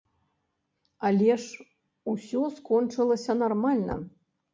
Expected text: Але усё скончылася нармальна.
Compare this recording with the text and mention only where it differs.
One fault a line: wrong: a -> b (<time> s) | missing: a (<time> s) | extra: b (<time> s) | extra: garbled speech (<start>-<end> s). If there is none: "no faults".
extra: ж (1.4 s)